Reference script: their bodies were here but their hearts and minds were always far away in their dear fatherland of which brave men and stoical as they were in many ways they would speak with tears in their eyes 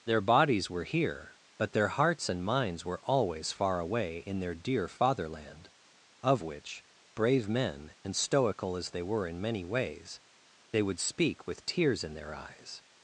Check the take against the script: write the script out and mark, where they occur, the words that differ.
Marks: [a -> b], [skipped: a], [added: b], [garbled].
their bodies were here but their hearts and minds were always far away in their dear fatherland of which brave men and stoical as they were in many ways they would speak with tears in their eyes